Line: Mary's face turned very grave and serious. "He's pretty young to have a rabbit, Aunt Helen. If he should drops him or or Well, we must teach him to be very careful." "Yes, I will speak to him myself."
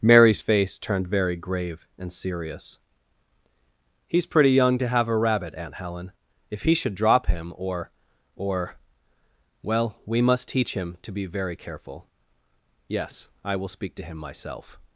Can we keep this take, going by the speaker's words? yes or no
no